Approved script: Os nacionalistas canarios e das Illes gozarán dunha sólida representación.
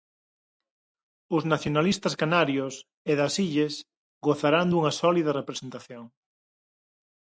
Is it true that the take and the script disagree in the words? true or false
false